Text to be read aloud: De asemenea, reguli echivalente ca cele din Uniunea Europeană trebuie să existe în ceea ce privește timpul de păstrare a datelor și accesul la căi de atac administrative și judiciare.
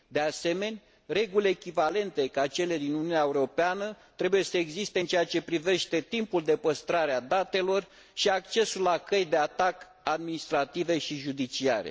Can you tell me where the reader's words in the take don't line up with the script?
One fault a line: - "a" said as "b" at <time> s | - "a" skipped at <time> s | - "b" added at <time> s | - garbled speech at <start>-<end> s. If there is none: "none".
none